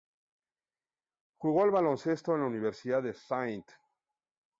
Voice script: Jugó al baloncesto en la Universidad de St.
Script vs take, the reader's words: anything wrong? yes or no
no